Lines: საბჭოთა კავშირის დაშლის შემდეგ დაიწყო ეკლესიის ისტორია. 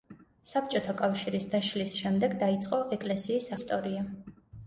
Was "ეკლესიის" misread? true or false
false